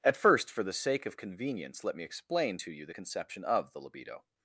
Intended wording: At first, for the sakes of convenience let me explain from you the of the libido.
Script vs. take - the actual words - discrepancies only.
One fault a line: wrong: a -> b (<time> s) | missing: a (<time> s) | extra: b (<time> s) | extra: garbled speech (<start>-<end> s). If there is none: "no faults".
wrong: sakes -> sake (0.7 s)
wrong: from -> to (2.6 s)
extra: conception (2.9 s)